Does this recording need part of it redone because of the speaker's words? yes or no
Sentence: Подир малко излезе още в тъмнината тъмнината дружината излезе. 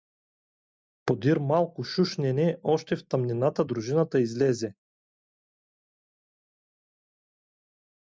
yes